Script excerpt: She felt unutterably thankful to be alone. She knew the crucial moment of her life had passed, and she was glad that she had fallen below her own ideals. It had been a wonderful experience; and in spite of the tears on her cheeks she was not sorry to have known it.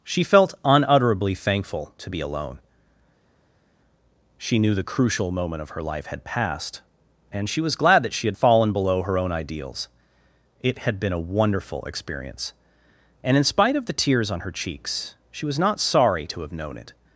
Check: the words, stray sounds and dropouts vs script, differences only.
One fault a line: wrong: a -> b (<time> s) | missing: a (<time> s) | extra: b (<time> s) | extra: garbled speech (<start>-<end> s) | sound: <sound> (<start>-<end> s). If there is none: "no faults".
no faults